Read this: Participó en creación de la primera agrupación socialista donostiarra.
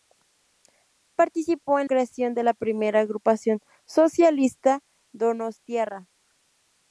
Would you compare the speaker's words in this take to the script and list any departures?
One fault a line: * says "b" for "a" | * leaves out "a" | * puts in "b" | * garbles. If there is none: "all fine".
all fine